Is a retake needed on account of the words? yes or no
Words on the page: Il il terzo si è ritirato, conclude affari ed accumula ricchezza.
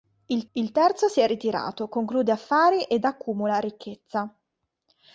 no